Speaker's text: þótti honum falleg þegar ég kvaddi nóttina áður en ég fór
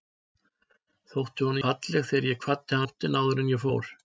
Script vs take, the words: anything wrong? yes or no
no